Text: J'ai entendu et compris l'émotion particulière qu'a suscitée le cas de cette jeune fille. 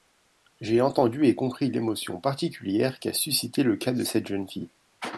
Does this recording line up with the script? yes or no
yes